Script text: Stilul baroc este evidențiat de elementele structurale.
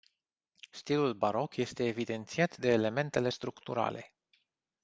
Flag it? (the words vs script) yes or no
no